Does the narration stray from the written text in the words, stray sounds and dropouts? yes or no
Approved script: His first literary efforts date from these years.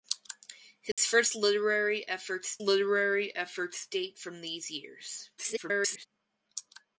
yes